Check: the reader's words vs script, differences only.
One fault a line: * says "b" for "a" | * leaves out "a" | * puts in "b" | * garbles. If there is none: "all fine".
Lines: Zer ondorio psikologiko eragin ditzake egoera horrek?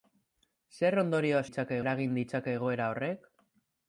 * says "ditzake" for "psikologiko"